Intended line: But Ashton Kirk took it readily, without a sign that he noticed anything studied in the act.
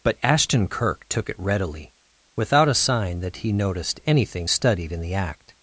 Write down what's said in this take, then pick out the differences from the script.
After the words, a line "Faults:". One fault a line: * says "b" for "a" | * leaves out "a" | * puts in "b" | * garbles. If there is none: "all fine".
But Ashton Kirk took it readily, without a sign that he noticed anything studied in the act.
Faults:
all fine